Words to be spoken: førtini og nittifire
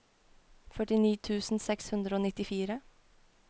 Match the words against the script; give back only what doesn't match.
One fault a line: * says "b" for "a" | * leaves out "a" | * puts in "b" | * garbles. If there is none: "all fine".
* puts in "tusen seks hundre"